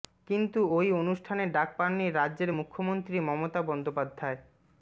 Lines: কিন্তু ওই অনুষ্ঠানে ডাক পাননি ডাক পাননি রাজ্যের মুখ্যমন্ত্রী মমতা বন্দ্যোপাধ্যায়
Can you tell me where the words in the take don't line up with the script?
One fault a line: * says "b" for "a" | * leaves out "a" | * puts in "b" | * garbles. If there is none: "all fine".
* leaves out "ডাক পাননি"